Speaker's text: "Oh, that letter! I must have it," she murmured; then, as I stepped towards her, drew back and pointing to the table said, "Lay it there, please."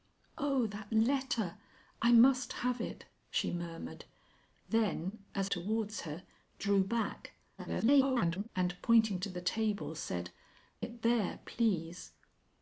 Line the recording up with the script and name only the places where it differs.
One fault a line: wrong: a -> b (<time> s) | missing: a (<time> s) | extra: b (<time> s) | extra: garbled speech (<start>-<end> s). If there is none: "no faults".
missing: I stepped (5.5 s)
extra: garbled speech (7.6-8.5 s)
missing: Lay (10.3 s)